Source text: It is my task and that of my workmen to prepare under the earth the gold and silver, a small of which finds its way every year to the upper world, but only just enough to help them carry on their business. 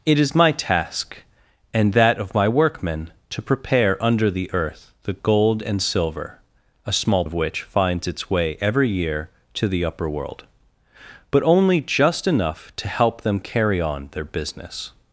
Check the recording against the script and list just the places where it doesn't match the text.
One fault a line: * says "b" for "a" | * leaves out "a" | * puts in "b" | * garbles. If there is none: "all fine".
all fine